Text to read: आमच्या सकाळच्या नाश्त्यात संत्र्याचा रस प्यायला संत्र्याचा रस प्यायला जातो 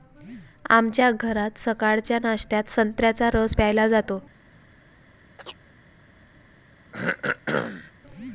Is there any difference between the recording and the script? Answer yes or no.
yes